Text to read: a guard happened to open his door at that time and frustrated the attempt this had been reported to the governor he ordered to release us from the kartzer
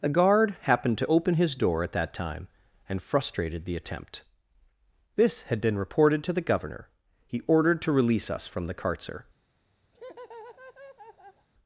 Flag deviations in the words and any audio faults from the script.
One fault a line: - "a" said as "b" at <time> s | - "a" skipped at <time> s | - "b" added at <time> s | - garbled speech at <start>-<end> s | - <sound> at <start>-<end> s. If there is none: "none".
- laugh at 9.9-11.5 s